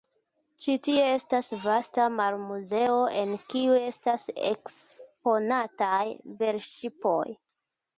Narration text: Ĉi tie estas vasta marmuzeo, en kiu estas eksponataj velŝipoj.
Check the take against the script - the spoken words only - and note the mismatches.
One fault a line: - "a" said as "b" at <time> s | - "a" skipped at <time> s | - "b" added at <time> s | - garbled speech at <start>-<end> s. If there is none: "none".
none